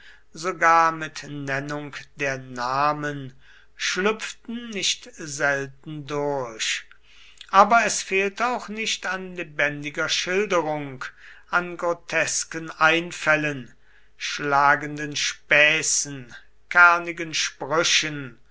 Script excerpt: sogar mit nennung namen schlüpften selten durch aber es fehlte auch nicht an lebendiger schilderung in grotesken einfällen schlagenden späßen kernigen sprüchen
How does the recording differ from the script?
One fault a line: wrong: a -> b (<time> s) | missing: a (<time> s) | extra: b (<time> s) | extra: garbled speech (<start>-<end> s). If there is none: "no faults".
extra: der (2.1 s)
extra: nicht (4.7 s)
wrong: in -> an (11.5 s)